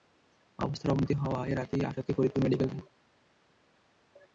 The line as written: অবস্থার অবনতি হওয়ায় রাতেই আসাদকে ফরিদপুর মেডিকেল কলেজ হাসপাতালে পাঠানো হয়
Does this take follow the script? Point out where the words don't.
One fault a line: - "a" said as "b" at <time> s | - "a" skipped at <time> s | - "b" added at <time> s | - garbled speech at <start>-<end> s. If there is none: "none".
- "কলেজ হাসপাতালে পাঠানো" skipped at 2.7 s